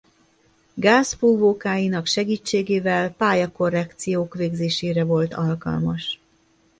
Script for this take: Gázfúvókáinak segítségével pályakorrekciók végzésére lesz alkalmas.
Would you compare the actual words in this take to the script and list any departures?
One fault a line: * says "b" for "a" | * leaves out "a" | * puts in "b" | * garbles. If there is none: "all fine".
* says "volt" for "lesz"